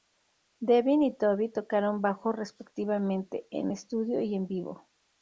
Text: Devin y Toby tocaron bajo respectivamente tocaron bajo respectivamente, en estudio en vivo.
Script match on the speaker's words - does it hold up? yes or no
no